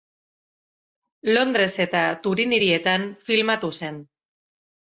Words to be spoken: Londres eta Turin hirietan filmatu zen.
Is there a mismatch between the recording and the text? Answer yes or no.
no